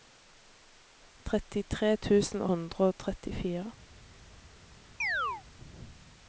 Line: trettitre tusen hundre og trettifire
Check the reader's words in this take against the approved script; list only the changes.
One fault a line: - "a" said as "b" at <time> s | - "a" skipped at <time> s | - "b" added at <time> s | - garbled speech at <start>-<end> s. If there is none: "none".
none